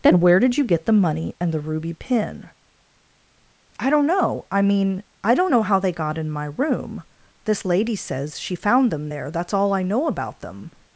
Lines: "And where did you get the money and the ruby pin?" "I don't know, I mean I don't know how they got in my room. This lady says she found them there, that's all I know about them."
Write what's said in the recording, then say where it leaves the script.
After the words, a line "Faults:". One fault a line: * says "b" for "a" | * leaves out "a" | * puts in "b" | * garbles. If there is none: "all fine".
"Then where did you get the money and the ruby pin?" "I don't know, I mean I don't know how they got in my room. This lady says she found them there, that's all I know about them."
Faults:
* says "Then" for "And"